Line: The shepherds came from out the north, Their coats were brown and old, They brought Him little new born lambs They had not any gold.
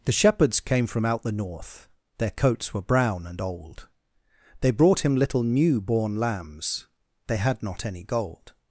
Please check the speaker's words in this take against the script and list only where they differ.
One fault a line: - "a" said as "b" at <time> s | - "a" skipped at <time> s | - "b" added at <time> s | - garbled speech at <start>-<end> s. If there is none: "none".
none